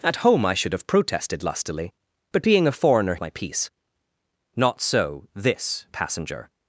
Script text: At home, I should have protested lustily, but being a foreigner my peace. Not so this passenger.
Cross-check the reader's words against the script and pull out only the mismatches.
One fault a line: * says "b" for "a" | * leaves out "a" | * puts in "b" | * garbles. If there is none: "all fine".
all fine